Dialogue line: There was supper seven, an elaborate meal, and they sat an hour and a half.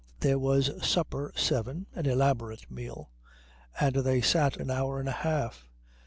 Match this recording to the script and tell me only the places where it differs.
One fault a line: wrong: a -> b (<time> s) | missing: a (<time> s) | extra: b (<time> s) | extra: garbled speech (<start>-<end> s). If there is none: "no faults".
no faults